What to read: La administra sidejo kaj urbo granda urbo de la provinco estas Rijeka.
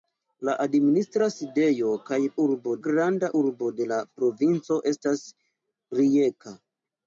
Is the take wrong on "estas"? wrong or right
right